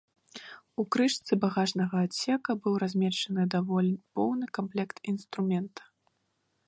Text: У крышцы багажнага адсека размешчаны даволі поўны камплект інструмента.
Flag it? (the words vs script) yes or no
yes